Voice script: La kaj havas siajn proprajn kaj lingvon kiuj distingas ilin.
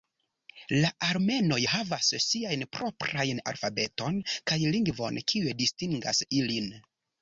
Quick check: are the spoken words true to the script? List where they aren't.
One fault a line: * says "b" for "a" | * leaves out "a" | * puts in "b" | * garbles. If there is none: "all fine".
* says "armenoj" for "kaj"
* puts in "alfabeton"